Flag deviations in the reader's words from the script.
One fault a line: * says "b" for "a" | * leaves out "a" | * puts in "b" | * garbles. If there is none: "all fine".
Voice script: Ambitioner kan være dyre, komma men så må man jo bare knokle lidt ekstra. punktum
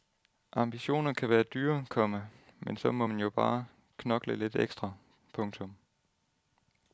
all fine